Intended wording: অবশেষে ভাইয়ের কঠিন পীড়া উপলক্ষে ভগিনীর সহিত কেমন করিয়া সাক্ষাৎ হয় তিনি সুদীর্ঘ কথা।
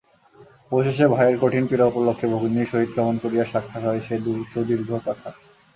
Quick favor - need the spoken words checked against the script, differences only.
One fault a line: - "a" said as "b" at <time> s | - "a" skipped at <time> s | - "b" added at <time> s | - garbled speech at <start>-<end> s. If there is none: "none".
- "তিনি" said as "সে" at 4.0 s